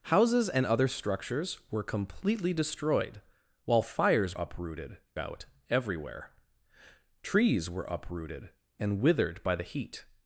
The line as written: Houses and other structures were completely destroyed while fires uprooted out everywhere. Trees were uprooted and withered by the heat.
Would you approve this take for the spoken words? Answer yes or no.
yes